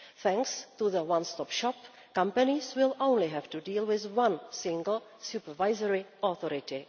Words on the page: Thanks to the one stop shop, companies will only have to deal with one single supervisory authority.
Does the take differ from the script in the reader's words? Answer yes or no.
no